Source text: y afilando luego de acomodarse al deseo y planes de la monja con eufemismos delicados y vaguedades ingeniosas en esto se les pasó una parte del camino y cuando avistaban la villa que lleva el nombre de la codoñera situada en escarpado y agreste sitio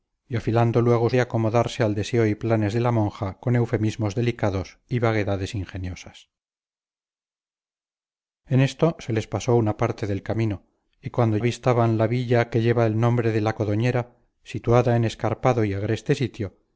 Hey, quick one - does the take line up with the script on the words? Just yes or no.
yes